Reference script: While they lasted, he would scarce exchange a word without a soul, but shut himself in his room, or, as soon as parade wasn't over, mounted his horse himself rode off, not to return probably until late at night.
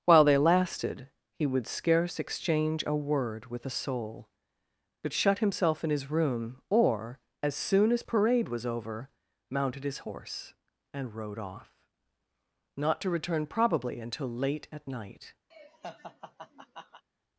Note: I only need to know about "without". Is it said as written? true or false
false